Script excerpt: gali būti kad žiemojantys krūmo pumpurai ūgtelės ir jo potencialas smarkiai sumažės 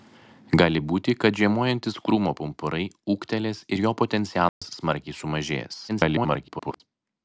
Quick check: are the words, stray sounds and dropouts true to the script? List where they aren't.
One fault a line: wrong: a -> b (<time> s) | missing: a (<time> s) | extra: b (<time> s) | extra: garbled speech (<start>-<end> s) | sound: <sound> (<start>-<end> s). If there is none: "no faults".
sound: dropout (4.5-4.6 s)
extra: garbled speech (5.9-6.8 s)